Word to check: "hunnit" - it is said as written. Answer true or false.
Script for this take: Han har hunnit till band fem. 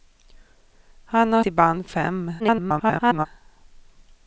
false